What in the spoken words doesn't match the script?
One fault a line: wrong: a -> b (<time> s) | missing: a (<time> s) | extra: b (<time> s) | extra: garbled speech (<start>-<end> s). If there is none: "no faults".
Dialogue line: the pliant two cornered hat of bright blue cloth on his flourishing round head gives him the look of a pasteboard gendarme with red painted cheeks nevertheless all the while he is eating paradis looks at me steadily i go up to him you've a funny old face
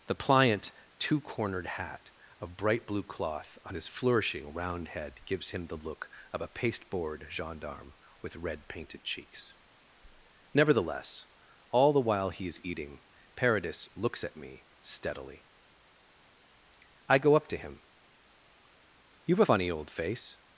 missing: a (19.4 s)